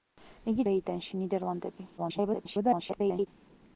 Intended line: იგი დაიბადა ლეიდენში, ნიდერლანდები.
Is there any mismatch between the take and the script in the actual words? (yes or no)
yes